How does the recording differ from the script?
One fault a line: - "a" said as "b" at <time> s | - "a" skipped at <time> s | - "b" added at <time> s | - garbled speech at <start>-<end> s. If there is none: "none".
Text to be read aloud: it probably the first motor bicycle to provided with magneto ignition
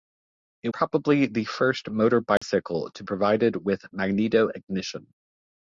none